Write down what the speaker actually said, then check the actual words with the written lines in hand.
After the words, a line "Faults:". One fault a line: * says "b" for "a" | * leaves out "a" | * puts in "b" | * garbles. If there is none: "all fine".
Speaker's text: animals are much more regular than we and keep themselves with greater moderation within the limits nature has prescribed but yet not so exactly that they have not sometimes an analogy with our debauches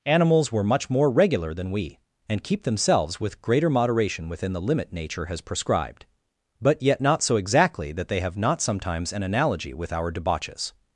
animals were much more regular than we and keep themselves with greater moderation within the limit nature has prescribed but yet not so exactly that they have not sometimes an analogy with our debauches
Faults:
* says "were" for "are"
* says "limit" for "limits"